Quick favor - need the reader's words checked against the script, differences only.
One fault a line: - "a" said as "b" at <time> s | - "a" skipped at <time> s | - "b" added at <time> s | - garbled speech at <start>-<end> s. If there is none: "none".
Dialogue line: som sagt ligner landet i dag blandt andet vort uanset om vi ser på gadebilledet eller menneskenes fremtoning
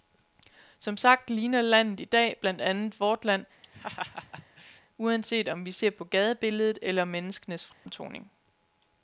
- "land" added at 3.2 s